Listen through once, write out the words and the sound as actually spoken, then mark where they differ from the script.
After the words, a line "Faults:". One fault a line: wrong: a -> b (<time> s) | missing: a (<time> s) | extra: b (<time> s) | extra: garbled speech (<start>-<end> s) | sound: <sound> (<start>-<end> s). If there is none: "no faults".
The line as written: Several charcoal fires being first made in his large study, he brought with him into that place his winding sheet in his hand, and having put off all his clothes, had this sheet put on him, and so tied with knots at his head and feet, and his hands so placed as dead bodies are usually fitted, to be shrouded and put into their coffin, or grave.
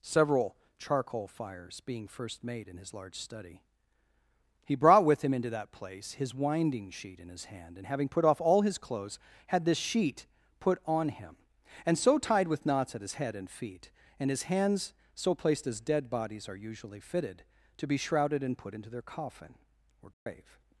Several charcoal fires being first made in his large study, he brought with him into that place his winding sheet in his hand, and having put off all his clothes, had this sheet put on him, and so tied with knots at his head and feet, and his hands so placed as dead bodies are usually fitted, to be shrouded and put into their coffin, or grave.
Faults:
sound: dropout (20.1-20.3 s)